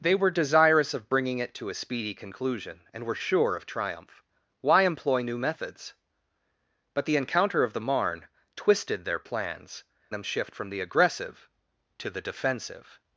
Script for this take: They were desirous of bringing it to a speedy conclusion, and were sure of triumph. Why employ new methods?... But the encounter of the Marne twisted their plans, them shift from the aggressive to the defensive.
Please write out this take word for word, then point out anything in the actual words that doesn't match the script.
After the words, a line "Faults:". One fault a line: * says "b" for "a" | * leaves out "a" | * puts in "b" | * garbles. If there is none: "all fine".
They were desirous of bringing it to a speedy conclusion, and were sure of triumph. Why employ new methods?... But the encounter of the Marne twisted their plans, them shift from the aggressive to the defensive.
Faults:
all fine